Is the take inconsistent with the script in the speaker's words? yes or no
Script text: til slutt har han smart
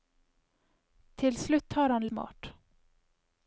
no